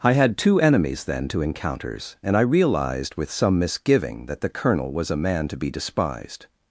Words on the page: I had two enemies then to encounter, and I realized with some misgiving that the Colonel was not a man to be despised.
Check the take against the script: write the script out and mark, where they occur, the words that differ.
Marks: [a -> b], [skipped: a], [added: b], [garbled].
I had two enemies then to [encounter, -> encounters] and I realized with some misgiving that the Colonel was [skipped: not] a man to be despised.